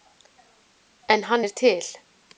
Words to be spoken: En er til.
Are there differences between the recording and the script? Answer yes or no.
yes